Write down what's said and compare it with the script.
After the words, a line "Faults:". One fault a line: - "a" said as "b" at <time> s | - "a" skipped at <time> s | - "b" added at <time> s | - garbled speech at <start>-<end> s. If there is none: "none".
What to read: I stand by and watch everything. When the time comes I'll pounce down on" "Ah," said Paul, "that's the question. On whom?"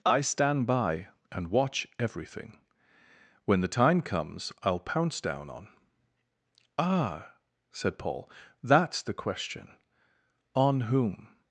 I stand by and watch everything. When the time comes I'll pounce down on" "Ah," said Paul, "that's the question. On whom?"
Faults:
none